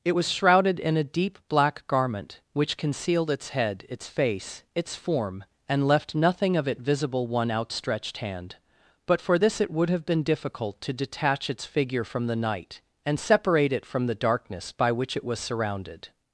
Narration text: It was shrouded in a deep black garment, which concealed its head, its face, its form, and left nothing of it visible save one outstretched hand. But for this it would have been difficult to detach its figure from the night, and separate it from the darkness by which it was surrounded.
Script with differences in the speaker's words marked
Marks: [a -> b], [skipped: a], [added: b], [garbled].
It was shrouded in a deep black garment, which concealed its head, its face, its form, and left nothing of it visible [skipped: save] one outstretched hand. But for this it would have been difficult to detach its figure from the night, and separate it from the darkness by which it was surrounded.